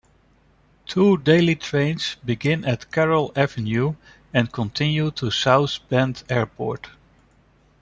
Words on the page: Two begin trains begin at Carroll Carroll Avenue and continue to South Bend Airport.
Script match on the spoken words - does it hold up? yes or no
no